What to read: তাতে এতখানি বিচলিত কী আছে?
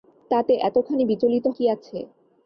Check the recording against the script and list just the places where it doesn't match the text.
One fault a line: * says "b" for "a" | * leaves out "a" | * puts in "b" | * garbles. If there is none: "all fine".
all fine